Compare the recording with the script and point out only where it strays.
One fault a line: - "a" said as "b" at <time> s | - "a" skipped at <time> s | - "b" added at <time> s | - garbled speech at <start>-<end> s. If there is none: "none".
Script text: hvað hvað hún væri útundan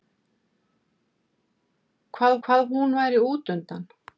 none